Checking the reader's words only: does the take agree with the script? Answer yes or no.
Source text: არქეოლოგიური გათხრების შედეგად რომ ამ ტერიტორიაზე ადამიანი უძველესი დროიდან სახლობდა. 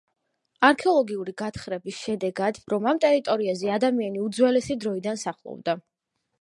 yes